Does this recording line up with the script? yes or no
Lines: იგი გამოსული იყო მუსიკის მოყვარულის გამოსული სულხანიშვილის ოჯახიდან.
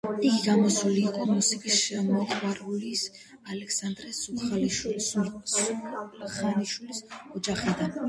no